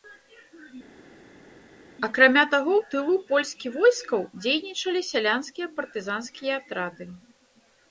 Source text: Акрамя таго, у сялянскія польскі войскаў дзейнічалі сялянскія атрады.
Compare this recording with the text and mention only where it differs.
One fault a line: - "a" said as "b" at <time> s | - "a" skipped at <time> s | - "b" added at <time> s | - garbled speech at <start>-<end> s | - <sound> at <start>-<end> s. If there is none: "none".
- "сялянскія" said as "тылу" at 2.9 s
- "партызанскія" added at 5.8 s